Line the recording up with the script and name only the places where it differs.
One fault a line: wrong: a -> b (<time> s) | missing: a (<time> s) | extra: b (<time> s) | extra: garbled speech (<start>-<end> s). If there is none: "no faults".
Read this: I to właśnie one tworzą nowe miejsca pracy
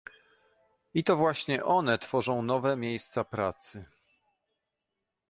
no faults